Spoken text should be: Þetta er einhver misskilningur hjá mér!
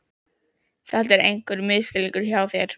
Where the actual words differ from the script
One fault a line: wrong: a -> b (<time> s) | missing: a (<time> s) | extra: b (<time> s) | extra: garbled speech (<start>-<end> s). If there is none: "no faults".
wrong: mér -> þér (2.5 s)